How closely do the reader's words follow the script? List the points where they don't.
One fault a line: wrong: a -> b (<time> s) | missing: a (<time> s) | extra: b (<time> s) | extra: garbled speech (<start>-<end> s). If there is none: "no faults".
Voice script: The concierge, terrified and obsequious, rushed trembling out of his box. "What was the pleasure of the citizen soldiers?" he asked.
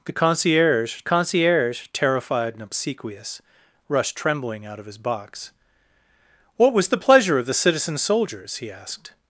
extra: concierge (1.0 s)